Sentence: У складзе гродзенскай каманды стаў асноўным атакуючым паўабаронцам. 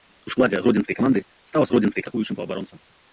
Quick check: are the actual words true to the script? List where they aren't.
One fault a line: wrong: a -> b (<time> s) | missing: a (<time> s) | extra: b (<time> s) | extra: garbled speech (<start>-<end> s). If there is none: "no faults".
wrong: асноўным -> гродзенскай (1.7 s)